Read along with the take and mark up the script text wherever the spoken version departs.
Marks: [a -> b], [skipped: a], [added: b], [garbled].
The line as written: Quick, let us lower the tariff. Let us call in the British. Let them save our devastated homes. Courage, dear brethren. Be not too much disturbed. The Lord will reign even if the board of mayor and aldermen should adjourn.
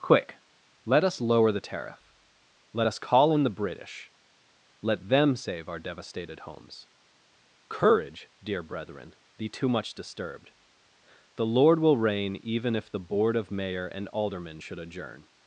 Quick, let us lower the tariff. Let us call in the British. Let them save our devastated homes. Courage, dear brethren. Be [skipped: not] too much disturbed. The Lord will reign even if the board of mayor and aldermen should adjourn.